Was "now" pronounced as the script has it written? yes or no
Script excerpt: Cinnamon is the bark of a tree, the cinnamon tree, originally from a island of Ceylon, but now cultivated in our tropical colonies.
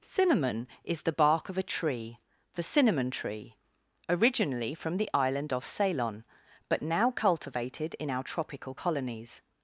yes